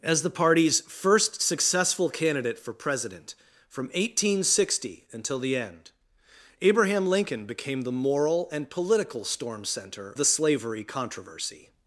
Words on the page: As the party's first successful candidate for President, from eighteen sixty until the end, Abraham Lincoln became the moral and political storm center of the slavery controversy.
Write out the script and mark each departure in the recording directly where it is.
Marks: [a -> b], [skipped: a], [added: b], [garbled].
As the party's first successful candidate for President, from eighteen sixty until the end, Abraham Lincoln became the moral and political storm center [skipped: of] the slavery controversy.